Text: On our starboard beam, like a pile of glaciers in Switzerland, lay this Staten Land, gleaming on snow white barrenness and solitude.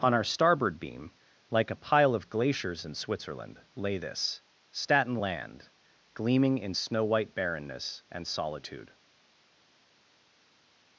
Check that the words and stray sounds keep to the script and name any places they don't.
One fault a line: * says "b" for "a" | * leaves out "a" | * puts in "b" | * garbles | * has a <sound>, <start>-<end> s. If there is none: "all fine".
* says "in" for "on"